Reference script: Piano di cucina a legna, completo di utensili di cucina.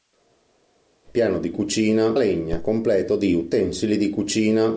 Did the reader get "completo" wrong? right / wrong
right